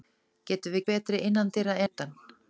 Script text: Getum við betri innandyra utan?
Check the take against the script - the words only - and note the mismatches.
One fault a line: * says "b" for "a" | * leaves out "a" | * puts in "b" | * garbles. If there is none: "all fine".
all fine